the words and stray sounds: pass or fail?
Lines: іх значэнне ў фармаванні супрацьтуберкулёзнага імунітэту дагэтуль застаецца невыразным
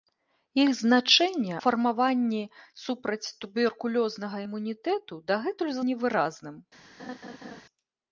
fail